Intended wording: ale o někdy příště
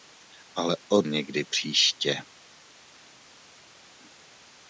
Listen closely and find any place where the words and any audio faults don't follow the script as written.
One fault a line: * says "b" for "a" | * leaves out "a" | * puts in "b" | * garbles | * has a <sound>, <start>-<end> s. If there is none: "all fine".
all fine